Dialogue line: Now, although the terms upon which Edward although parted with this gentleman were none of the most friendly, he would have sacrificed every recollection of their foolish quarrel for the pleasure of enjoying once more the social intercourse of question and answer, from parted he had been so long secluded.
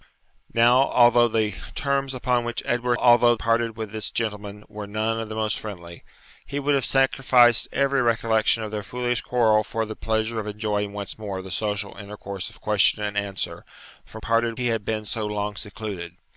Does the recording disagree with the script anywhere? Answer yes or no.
no